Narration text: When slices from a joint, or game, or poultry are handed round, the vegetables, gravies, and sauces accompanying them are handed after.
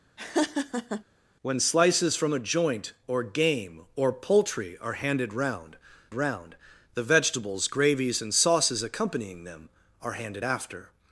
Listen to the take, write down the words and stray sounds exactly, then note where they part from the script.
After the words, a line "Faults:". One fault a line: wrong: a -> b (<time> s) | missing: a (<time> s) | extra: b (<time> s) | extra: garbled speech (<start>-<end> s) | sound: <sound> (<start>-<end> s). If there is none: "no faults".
When slices from a joint, or game, or poultry are handed round round, the vegetables, gravies, and sauces accompanying them are handed after.
Faults:
sound: laugh (0.2-1.0 s)
extra: round (6.1 s)